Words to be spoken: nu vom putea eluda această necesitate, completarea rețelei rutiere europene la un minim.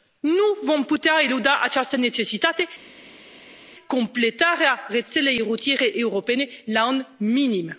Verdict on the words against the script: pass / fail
pass